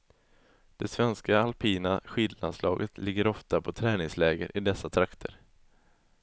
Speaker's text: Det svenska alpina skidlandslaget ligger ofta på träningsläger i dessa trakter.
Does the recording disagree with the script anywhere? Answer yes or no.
no